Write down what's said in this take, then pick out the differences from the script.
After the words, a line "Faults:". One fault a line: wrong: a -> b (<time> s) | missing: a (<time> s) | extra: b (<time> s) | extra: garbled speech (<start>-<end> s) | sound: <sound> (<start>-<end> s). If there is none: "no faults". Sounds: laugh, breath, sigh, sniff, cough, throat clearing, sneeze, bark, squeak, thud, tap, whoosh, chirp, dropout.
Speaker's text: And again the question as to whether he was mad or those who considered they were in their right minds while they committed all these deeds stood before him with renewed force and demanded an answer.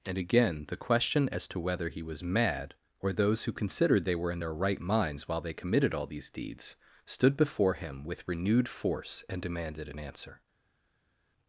And again the question as to whether he was mad or those who considered they were in their right minds while they committed all these deeds stood before him with renewed force and demanded an answer.
Faults:
no faults